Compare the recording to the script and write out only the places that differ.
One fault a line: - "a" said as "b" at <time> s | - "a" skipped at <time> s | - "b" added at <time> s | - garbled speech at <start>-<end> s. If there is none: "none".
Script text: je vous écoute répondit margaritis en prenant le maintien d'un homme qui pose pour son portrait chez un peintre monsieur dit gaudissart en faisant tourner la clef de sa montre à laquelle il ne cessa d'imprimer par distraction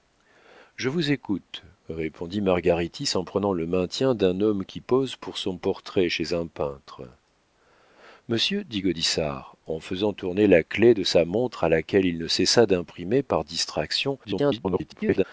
- garbled speech at 14.2-15.2 s